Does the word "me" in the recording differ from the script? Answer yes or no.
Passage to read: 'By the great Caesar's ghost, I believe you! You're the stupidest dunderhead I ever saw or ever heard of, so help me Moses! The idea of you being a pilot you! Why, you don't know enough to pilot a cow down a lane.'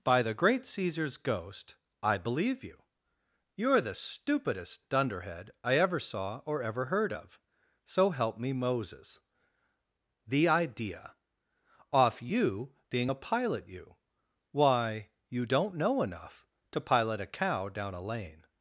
no